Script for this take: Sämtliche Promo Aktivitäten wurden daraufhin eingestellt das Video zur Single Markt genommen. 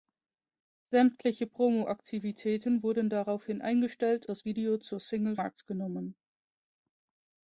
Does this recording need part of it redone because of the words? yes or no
no